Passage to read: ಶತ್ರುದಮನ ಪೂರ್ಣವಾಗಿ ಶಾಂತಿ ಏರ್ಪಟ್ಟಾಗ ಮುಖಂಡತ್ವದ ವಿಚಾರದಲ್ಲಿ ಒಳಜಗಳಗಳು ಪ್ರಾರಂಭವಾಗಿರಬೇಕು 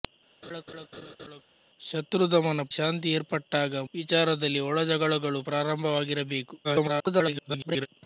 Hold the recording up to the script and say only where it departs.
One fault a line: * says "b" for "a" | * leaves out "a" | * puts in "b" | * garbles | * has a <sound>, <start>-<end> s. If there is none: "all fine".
* has a laugh, 0.4-1.4 s
* leaves out "ಪೂರ್ಣವಾಗಿ"
* leaves out "ಮುಖಂಡತ್ವದ"
* garbles